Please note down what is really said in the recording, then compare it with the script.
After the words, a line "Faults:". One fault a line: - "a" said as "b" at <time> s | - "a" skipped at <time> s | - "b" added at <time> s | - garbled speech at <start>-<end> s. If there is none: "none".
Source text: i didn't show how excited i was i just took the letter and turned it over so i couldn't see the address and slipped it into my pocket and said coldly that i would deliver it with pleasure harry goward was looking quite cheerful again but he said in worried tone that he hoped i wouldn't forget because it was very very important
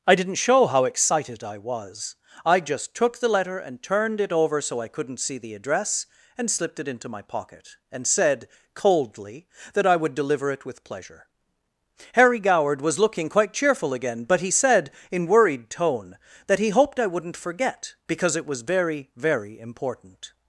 i didn't show how excited i was i just took the letter and turned it over so i couldn't see the address and slipped it into my pocket and said coldly that i would deliver it with pleasure harry goward was looking quite cheerful again but he said in worried tone that he hoped i wouldn't forget because it was very very important
Faults:
none